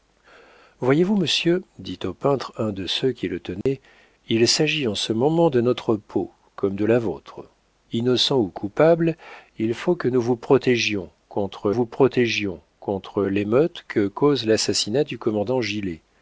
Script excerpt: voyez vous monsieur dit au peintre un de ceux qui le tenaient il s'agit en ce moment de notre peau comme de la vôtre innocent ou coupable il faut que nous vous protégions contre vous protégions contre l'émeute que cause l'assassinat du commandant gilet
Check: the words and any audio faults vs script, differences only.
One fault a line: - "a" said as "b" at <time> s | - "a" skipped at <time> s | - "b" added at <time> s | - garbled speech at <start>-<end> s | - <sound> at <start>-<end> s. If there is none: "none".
- dropout at 3.6-3.7 s